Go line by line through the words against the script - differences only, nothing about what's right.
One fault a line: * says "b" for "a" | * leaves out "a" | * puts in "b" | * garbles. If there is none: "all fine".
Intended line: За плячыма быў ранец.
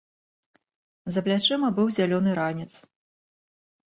* puts in "зялёны"